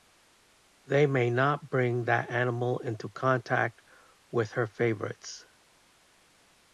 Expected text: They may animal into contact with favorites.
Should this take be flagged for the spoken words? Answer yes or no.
yes